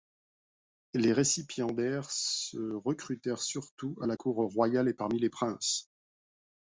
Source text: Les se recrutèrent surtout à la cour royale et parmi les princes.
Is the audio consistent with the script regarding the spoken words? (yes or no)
no